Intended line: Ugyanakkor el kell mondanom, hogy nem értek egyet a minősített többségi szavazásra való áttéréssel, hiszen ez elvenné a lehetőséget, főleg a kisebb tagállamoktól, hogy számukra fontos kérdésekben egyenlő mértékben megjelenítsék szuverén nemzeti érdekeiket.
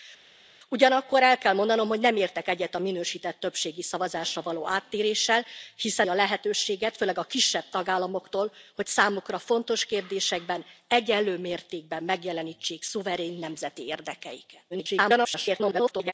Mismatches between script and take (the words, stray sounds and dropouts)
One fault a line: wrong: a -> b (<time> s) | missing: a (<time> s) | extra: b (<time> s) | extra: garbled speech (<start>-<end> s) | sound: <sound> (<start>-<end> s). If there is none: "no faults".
missing: ez elvenné (6.1 s)
extra: garbled speech (14.7-16.1 s)